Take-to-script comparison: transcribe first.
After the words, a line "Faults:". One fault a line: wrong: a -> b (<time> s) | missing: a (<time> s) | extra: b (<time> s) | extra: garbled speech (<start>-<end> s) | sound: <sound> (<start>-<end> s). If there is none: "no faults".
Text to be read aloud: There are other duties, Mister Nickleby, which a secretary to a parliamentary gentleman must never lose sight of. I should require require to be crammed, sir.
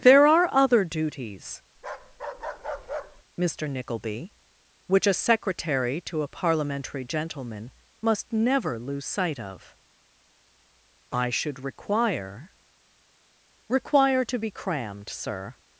There are other duties, Mister Nickleby, which a secretary to a parliamentary gentleman must never lose sight of. I should require require to be crammed, sir.
Faults:
sound: bark (1.8-3.2 s)